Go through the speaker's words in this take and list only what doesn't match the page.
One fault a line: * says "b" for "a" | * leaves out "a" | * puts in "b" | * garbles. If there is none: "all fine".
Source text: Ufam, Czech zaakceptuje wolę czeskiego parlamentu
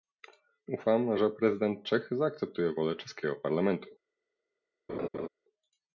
* puts in "że prezydent"